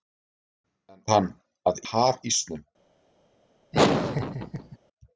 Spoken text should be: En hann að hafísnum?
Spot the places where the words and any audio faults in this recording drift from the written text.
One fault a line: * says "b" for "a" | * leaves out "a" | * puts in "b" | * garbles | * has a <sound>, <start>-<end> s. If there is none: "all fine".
* has a laugh, 3.7-4.8 s